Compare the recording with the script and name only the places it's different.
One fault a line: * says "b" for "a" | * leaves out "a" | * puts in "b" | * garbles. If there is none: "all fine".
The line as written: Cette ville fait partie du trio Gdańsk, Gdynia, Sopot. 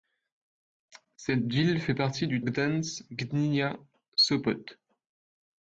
* leaves out "trio"